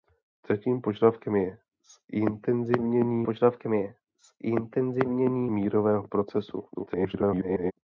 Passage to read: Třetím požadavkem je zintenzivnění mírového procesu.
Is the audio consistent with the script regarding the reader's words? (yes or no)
no